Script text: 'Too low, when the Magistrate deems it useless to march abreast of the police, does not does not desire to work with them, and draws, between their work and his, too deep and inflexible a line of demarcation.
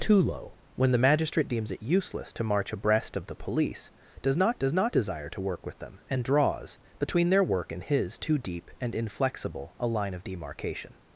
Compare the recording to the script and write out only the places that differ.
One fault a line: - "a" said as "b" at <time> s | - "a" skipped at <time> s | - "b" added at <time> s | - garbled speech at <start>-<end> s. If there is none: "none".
none